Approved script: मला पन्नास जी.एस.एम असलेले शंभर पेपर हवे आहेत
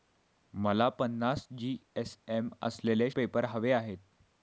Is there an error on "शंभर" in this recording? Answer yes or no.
yes